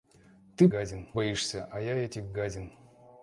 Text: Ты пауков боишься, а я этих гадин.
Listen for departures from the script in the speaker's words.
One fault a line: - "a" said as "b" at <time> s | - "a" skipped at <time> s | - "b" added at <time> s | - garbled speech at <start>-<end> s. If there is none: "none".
- "пауков" said as "гадин" at 0.7 s